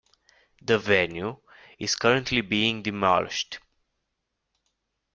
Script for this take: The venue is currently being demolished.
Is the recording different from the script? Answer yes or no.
no